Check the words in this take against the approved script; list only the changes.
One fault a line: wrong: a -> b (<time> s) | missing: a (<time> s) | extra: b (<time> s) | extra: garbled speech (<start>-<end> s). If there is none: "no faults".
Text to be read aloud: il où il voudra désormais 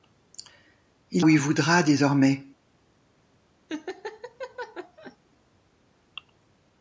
no faults